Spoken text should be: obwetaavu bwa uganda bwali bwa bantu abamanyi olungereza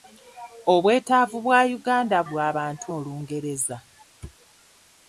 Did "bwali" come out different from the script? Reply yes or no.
yes